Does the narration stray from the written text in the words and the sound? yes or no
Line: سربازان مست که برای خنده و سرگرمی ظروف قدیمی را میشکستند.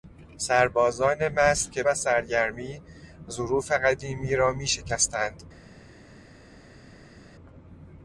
yes